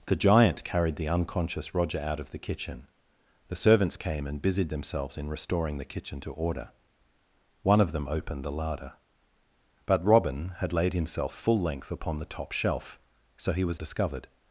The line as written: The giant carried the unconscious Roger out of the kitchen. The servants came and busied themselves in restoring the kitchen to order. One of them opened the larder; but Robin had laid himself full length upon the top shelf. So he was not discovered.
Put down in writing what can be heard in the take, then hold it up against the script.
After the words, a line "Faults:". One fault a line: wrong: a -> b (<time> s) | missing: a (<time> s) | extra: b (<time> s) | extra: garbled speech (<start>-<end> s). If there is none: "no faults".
The giant carried the unconscious Roger out of the kitchen. The servants came and busied themselves in restoring the kitchen to order. One of them opened the larder; but Robin had laid himself full length upon the top shelf. So he was discovered.
Faults:
missing: not (13.8 s)